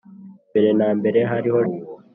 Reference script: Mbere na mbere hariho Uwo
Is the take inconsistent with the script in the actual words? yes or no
no